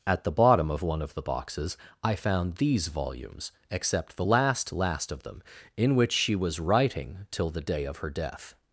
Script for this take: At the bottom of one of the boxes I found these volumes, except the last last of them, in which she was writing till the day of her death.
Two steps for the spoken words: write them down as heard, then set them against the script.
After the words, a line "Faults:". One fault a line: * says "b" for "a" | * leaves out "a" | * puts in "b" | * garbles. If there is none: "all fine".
At the bottom of one of the boxes I found these volumes, except the last last of them, in which she was writing till the day of her death.
Faults:
all fine